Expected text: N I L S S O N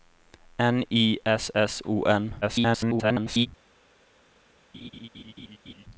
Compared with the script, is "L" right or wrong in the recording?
wrong